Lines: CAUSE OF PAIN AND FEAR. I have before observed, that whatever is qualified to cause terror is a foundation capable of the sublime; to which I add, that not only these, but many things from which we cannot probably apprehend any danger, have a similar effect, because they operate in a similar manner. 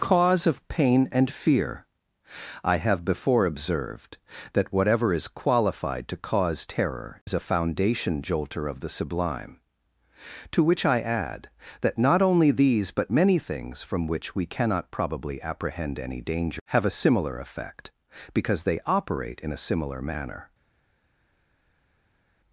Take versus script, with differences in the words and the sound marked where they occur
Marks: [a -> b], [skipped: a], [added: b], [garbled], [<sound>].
CAUSE OF PAIN AND FEAR. I have before observed, that whatever is qualified to cause terror is a foundation [capable -> jolter] of the sublime; to which I add, that not only these, but many things from which we cannot probably apprehend any danger, have a similar effect, because they operate in a similar manner.